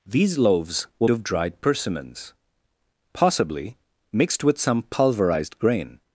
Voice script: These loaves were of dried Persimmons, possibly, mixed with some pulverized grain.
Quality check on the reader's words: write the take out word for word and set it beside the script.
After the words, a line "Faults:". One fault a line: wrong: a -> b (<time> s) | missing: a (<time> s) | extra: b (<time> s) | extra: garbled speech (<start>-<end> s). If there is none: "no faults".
These loaves were of dried Persimmons, possibly, mixed with some pulverized grain.
Faults:
no faults